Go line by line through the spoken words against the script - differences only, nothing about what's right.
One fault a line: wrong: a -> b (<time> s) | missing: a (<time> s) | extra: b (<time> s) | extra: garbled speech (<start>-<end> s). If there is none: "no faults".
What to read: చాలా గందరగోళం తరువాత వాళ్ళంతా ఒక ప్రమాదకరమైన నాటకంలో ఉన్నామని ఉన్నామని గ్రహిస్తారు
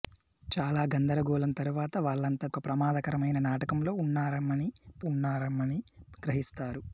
no faults